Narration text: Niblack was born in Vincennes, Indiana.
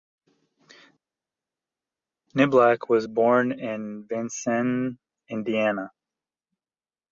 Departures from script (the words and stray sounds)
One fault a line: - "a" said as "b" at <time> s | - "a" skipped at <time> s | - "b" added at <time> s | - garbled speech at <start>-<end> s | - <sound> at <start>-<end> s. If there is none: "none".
none